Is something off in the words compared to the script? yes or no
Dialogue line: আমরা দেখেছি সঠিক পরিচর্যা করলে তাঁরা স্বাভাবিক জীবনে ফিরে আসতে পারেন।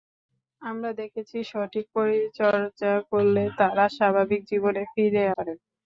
yes